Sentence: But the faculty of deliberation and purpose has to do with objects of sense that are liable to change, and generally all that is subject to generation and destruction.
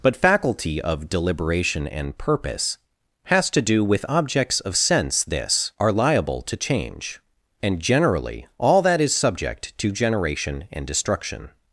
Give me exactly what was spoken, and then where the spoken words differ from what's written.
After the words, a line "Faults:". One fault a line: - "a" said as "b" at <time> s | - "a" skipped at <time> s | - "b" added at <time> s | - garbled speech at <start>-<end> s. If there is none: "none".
But faculty of deliberation and purpose has to do with objects of sense this are liable to change, and generally all that is subject to generation and destruction.
Faults:
- "the" skipped at 0.1 s
- "that" said as "this" at 5.2 s